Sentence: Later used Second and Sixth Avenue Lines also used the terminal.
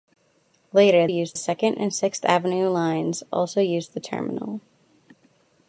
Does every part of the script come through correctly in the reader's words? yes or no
yes